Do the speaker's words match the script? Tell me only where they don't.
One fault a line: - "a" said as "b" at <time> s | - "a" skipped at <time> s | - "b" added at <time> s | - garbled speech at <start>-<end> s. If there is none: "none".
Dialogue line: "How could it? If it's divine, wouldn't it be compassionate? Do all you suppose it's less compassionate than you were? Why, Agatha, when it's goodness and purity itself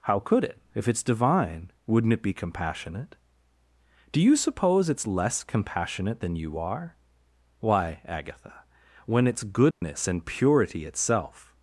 - "all" skipped at 4.2 s
- "were" said as "are" at 6.6 s